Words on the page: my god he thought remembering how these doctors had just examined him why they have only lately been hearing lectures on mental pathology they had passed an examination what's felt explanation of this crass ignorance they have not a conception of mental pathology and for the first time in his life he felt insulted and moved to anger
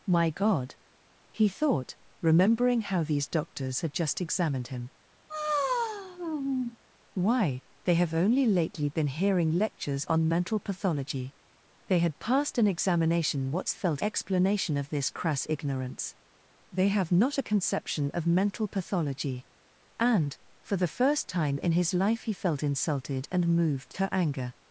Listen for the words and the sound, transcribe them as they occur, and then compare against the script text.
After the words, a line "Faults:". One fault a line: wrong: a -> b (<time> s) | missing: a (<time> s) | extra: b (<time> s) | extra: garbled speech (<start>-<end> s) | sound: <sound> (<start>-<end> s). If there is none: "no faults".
my god he thought remembering how these doctors had just examined him why they have only lately been hearing lectures on mental pathology they had passed an examination what's felt explanation of this crass ignorance they have not a conception of mental pathology and for the first time in his life he felt insulted and moved to anger
Faults:
sound: sigh (5.3-6.8 s)